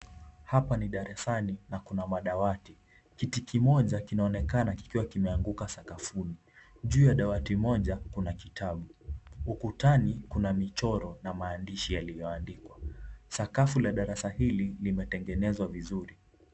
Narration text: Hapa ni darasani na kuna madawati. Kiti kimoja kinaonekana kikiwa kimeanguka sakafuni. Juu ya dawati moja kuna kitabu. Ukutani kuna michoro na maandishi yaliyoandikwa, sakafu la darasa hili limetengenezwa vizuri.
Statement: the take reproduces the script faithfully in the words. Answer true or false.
true